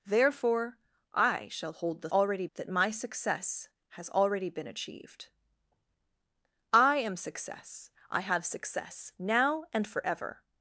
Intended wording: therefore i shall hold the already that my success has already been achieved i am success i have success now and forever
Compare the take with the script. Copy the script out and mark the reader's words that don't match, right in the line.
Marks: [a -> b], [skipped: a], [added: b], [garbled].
therefore i shall hold the already that my success has already been achieved i am success i have success now and forever